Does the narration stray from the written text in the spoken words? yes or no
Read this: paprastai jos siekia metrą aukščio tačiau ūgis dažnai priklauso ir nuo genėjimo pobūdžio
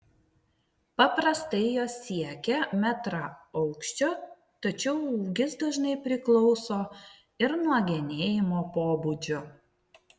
no